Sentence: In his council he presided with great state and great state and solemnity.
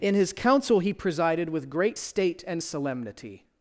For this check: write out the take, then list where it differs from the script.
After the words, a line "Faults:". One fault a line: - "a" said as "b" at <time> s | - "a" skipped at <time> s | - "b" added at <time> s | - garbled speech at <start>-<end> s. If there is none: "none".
In his council he presided with great state and solemnity.
Faults:
- "great state and" skipped at 2.6 s